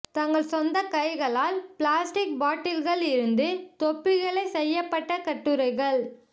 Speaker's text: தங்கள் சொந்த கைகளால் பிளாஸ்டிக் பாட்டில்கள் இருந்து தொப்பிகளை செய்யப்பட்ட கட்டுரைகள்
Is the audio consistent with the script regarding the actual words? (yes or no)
yes